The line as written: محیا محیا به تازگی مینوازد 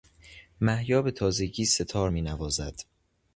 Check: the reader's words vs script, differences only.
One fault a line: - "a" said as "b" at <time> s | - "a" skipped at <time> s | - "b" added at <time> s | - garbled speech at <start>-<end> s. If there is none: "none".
- "محیا" skipped at 1.0 s
- "سهتار" added at 1.6 s